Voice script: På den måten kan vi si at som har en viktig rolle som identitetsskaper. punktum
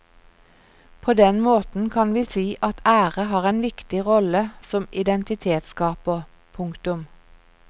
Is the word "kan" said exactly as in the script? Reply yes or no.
yes